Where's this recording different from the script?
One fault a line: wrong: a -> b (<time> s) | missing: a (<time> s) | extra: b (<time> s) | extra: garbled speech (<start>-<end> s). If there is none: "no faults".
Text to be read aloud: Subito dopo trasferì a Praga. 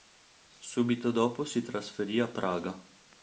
extra: si (1.4 s)